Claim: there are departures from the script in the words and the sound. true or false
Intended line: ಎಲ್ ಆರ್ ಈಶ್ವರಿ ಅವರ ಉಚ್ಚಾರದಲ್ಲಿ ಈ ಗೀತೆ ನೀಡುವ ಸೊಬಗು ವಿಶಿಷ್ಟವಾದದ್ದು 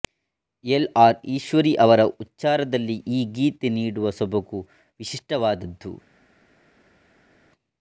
false